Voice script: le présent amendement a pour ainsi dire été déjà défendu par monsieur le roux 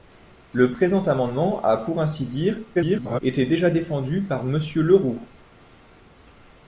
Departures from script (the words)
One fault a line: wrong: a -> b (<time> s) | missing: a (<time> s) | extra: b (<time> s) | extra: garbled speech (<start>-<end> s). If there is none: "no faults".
extra: garbled speech (2.7-3.2 s)